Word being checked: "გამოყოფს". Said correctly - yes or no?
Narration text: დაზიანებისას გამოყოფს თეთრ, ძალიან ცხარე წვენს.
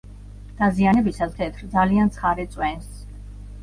no